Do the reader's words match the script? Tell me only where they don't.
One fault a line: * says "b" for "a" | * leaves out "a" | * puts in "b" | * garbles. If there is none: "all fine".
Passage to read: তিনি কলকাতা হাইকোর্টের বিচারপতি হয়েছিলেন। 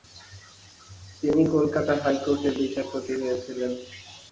all fine